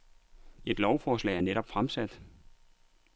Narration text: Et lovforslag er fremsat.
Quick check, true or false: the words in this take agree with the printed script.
false